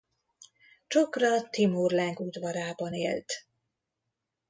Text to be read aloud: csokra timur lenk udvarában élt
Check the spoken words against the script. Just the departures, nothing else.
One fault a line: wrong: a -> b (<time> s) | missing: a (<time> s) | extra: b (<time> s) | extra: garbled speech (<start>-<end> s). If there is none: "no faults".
no faults